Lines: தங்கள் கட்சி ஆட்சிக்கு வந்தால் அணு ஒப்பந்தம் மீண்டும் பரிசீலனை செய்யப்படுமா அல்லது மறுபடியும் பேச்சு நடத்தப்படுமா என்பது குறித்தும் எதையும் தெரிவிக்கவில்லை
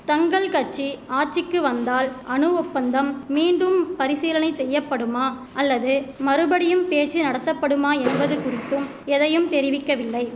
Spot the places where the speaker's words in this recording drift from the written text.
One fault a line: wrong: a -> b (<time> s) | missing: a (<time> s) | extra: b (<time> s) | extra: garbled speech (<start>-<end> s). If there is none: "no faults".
no faults